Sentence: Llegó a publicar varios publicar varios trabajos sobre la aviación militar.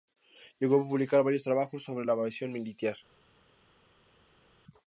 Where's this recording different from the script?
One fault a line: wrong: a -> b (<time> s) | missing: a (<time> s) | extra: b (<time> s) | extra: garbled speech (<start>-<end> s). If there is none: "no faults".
missing: publicar varios (1.4 s)